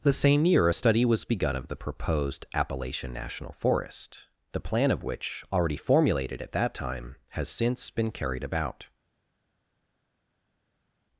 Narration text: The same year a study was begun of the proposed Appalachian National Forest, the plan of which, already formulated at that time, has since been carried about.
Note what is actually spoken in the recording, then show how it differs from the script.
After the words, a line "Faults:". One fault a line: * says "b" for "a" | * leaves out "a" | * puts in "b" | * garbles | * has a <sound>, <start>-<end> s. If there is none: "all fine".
The same year a study was begun of the proposed Appalachian National Forest, the plan of which, already formulated at that time, has since been carried about.
Faults:
all fine